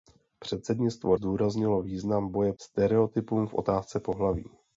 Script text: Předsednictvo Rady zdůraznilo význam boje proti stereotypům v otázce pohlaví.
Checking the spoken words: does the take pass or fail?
fail